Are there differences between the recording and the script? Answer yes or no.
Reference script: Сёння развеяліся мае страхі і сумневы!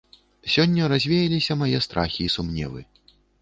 no